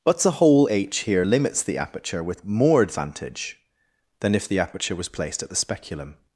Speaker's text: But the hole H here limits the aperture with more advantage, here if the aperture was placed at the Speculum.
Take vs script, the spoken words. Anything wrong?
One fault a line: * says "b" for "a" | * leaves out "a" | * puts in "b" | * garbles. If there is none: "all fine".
* says "than" for "here"